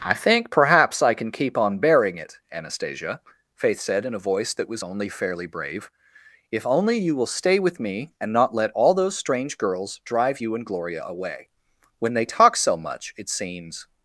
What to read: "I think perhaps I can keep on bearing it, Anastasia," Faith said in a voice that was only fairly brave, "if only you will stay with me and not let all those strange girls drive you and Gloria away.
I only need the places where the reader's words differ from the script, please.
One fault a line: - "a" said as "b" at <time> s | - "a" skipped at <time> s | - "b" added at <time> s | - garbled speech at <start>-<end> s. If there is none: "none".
- "When they talk so much it seems" added at 12.0 s